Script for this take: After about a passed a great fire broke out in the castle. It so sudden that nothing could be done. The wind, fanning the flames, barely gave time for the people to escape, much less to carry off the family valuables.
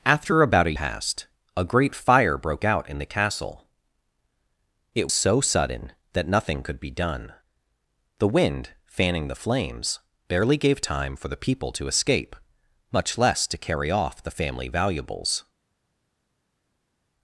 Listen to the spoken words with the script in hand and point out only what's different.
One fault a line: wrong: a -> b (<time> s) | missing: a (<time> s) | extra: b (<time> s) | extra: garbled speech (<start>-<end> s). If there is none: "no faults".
no faults